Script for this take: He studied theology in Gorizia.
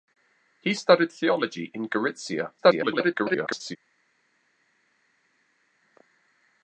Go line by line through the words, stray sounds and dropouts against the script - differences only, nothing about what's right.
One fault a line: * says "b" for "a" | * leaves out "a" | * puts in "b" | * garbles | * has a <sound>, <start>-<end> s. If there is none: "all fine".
* garbles